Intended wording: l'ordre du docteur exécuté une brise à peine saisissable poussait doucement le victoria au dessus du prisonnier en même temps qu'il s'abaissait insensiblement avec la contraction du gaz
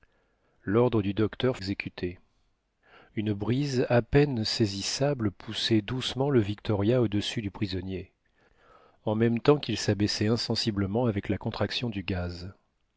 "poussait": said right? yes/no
yes